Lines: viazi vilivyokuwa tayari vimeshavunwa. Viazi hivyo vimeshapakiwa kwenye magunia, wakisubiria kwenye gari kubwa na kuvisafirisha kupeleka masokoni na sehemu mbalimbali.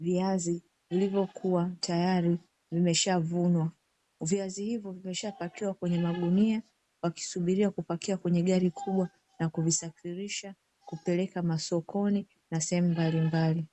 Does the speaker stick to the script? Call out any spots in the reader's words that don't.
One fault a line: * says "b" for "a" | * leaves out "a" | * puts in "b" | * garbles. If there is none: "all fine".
* puts in "kupakia"